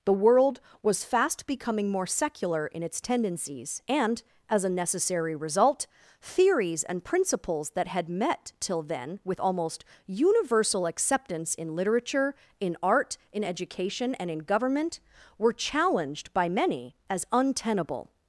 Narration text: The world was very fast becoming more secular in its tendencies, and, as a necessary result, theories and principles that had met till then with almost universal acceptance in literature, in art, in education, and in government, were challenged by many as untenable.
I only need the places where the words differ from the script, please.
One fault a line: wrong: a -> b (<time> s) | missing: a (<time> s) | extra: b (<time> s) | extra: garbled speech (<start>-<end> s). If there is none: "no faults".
missing: very (1.0 s)